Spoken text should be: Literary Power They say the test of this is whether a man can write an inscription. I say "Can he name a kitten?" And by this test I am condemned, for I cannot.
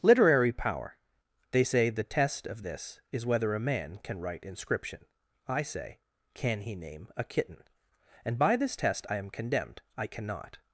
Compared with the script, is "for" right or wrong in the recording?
wrong